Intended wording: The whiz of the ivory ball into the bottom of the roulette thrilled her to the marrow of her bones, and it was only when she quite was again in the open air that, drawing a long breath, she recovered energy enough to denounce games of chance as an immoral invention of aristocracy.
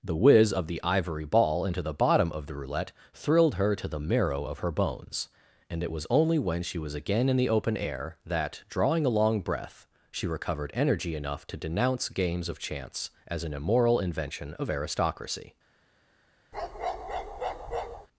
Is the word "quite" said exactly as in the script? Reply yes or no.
no